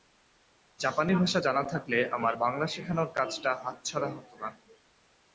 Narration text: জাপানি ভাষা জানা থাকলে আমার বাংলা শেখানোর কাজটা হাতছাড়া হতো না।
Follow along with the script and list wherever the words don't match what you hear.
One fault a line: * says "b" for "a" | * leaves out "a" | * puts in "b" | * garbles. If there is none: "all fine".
all fine